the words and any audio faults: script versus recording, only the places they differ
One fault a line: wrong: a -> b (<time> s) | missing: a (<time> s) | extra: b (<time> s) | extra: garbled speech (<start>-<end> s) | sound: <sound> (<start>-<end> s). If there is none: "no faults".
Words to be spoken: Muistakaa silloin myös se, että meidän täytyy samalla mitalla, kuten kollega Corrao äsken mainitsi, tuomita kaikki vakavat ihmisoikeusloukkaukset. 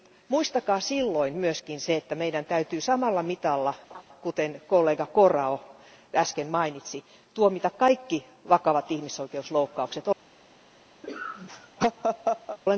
sound: laugh (3.9-4.0 s)
sound: laugh (11.0-12.6 s)